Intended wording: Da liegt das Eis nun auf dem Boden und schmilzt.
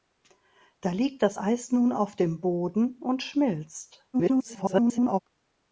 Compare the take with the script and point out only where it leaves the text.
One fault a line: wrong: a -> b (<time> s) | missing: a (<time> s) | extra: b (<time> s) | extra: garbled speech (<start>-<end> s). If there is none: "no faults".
extra: garbled speech (4.1-5.2 s)